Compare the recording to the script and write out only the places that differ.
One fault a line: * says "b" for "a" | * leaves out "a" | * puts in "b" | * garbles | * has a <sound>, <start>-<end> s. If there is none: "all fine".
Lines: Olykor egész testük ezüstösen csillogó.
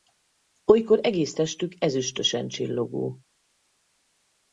all fine